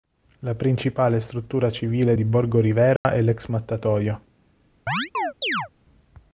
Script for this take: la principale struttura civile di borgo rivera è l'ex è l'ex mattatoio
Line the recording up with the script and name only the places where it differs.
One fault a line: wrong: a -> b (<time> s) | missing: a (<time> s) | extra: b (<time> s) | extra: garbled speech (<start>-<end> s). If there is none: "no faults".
missing: è l'ex (3.5 s)